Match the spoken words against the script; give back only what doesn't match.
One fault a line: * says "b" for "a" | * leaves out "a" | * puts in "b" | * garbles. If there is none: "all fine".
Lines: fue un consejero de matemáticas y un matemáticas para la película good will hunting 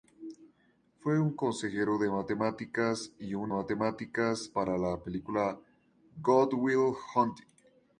all fine